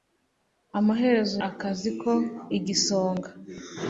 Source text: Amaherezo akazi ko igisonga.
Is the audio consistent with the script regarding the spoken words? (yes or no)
yes